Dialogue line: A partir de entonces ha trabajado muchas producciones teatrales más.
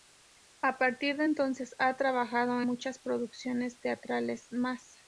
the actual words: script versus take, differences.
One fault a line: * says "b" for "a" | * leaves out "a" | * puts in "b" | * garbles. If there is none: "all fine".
all fine